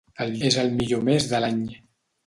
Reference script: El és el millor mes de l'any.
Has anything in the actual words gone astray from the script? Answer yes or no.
no